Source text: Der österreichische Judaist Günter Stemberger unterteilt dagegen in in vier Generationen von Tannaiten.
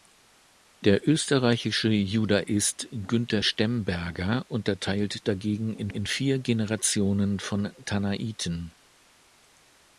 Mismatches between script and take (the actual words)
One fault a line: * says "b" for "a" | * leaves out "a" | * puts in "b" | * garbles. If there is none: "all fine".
all fine